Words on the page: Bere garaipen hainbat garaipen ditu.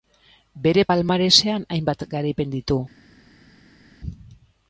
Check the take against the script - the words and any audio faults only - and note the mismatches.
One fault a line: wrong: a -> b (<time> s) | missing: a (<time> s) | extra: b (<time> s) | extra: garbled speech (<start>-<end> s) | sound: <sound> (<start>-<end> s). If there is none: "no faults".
wrong: garaipen -> palmaresean (0.9 s)